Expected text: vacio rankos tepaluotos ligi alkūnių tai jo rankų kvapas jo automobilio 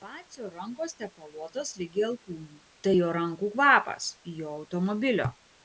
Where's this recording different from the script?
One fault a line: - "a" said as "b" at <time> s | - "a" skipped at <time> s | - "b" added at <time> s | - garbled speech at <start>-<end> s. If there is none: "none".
none